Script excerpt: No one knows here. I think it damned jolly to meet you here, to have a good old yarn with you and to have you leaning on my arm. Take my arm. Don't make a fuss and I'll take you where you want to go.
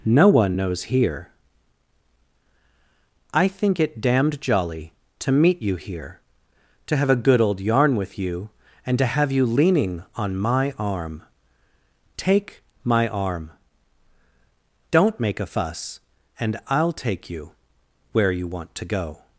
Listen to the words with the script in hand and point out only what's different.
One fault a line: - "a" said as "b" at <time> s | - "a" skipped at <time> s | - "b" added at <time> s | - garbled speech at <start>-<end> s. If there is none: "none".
none